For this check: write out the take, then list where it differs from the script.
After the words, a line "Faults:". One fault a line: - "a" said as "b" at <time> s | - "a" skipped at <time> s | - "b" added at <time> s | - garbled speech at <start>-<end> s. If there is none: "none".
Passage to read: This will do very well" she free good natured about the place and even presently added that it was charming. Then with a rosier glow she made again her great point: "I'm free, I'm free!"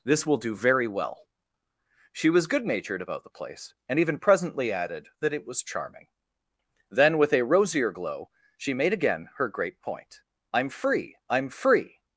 This will do very well" she was good natured about the place and even presently added that it was charming. Then with a rosier glow she made again her great point: "I'm free, I'm free!"
Faults:
- "free" said as "was" at 2.3 s